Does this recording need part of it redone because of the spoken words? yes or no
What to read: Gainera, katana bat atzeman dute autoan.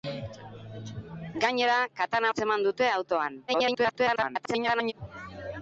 yes